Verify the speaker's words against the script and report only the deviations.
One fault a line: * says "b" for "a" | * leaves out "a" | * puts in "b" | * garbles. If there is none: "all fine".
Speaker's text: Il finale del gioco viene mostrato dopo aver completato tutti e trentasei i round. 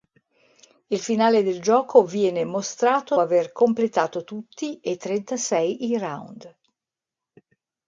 * leaves out "dopo"